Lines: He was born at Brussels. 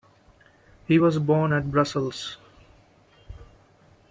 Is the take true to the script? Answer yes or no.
yes